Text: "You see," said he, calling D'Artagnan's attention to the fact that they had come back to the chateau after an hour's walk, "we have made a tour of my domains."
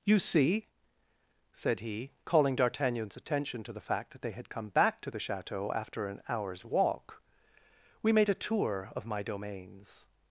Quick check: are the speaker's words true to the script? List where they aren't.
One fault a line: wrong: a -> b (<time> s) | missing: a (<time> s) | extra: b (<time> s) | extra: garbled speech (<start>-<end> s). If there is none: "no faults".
missing: have (8.1 s)